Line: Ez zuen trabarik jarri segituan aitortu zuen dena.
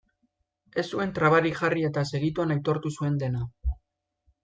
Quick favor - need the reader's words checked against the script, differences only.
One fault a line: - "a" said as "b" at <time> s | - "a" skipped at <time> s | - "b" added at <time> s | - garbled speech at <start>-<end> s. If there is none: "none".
- "eta" added at 1.9 s